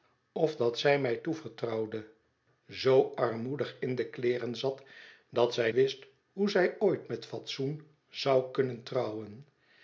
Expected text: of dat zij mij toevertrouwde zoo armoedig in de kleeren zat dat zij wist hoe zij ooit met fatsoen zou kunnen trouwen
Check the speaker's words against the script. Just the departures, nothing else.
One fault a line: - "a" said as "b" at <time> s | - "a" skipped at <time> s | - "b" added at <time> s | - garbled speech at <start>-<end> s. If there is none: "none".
none